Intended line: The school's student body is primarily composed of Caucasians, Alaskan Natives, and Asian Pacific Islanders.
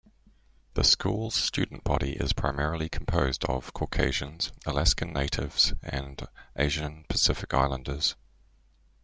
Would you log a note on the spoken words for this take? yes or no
no